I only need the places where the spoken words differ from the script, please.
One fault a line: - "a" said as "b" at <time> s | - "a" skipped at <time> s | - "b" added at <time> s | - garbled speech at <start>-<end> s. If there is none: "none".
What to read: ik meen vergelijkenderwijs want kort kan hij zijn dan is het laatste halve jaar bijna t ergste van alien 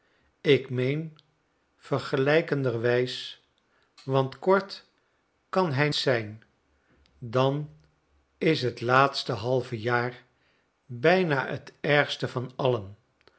none